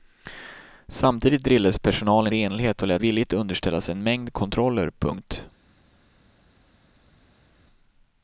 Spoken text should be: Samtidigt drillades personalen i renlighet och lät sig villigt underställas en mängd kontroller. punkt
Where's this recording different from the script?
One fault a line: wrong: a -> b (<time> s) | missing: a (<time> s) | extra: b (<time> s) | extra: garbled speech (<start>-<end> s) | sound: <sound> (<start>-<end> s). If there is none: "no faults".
missing: i (2.3 s)
missing: sig (3.0 s)